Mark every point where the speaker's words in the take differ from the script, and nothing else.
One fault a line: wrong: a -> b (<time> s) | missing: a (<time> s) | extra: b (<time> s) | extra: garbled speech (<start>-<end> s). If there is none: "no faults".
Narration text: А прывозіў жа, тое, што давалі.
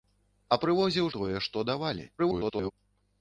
missing: жа (1.1 s)
extra: garbled speech (2.2-2.7 s)